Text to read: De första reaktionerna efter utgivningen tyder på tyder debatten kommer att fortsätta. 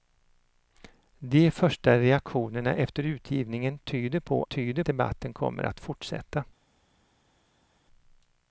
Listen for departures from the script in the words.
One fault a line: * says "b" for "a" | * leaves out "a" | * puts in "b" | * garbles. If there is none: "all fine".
all fine